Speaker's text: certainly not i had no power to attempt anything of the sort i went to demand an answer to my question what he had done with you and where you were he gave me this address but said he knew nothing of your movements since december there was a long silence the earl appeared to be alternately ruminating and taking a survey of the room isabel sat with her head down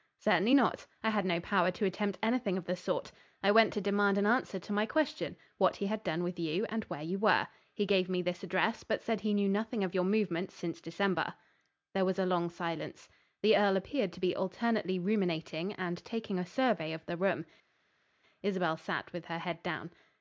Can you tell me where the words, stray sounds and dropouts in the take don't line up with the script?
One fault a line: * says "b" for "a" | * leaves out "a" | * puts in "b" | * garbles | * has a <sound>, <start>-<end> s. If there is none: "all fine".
all fine